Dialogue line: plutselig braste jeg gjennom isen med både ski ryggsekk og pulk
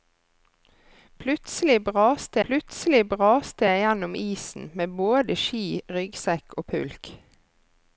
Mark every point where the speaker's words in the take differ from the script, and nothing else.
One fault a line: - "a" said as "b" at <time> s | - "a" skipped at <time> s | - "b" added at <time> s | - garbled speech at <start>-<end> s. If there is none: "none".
- "plutselig braste" added at 2.4 s